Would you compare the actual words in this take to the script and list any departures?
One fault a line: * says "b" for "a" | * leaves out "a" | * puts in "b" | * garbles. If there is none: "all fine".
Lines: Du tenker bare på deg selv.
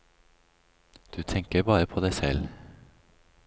all fine